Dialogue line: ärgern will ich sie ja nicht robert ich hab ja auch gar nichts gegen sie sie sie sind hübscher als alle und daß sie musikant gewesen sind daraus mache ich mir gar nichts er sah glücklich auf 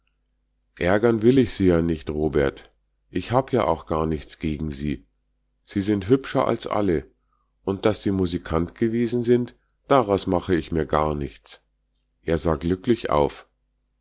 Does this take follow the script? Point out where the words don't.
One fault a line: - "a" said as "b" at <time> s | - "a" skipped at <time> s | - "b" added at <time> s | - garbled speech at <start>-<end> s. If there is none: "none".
- "sie" skipped at 5.8 s